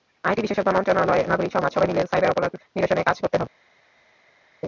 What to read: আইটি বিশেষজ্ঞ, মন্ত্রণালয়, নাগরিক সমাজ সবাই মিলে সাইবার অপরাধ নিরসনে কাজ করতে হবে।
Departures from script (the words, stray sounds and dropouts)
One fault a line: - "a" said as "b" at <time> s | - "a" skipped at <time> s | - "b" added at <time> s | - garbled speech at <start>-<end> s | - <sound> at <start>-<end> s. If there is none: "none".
none